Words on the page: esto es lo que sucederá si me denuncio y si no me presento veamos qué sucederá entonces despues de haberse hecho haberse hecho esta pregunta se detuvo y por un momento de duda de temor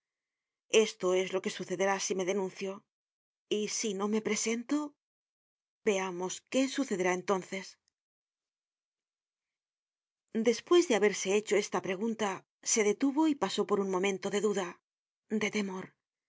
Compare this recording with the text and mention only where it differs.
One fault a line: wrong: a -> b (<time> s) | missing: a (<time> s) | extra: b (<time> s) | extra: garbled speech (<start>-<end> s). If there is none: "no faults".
missing: haberse hecho (11.6 s)
extra: pasó (13.4 s)